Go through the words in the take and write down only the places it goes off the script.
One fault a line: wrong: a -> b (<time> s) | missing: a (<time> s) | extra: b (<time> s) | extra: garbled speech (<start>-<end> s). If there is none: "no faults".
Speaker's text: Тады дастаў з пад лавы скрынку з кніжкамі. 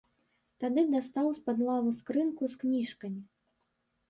no faults